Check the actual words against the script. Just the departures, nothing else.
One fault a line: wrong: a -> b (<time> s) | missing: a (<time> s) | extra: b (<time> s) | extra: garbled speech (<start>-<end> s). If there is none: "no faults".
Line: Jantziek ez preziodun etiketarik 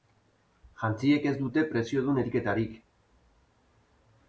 extra: dute (1.4 s)